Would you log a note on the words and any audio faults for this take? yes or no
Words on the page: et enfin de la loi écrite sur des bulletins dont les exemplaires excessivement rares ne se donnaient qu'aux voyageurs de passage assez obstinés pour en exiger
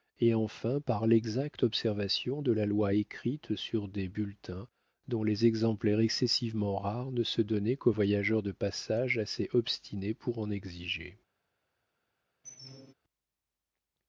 yes